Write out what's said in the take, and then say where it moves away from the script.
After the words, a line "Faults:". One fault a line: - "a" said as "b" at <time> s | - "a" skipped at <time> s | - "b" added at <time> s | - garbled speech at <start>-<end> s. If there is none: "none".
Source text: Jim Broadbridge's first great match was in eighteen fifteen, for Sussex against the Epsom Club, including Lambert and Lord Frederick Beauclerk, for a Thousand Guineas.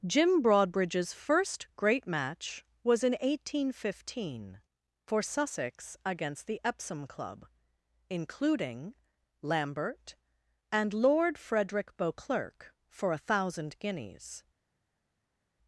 Jim Broadbridge's first great match was in eighteen fifteen, for Sussex against the Epsom Club, including Lambert and Lord Frederick Beauclerk, for a Thousand Guineas.
Faults:
none